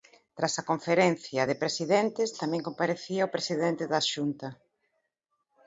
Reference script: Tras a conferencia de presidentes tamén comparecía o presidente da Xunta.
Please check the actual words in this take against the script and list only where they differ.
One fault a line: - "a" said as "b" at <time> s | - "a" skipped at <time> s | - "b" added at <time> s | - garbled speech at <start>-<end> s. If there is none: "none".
none